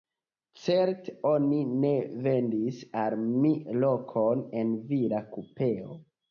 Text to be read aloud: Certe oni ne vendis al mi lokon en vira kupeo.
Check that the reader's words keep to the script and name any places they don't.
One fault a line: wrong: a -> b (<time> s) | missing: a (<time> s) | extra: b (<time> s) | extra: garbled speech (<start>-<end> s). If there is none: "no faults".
no faults